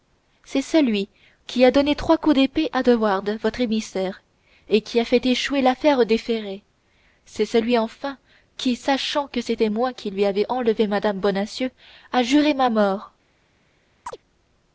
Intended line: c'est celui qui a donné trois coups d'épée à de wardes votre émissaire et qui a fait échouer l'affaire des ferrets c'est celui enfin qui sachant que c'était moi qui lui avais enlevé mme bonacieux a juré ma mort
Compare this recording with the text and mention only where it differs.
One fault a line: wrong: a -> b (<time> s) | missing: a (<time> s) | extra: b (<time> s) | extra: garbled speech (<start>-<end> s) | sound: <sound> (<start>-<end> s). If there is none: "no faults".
sound: chirp (14.1-14.2 s)